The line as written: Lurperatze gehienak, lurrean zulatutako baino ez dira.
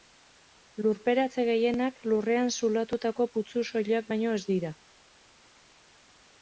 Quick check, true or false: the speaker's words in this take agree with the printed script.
false